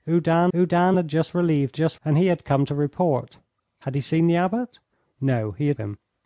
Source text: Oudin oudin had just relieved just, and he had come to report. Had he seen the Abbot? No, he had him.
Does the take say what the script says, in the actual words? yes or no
yes